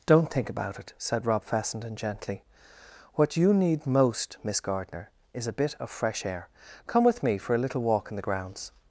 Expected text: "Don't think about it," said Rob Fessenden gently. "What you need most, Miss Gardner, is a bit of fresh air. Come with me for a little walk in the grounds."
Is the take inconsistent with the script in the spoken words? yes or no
no